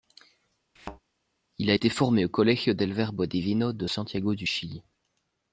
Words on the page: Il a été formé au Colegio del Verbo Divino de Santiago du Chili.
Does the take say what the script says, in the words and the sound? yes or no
no